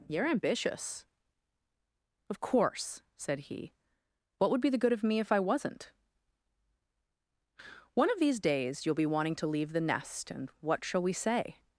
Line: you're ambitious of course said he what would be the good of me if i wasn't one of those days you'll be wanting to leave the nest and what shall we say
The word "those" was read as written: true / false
false